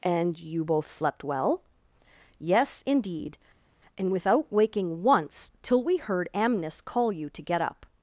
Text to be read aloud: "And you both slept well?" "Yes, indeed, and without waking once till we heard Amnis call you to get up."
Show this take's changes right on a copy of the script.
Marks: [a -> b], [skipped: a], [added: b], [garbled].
"And you both slept well?" "Yes, indeed, and without waking once till we heard Amnis call you to get up."